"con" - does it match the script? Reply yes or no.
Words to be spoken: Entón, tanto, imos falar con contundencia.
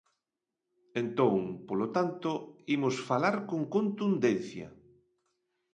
yes